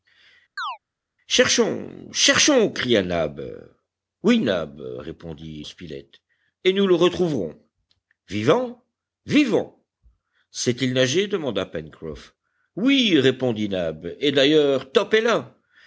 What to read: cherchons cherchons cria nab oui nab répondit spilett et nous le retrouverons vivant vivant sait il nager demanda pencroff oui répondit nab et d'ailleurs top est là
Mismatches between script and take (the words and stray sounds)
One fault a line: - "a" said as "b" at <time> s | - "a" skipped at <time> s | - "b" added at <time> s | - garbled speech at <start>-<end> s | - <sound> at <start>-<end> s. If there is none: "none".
- chirp at 0.6-0.8 s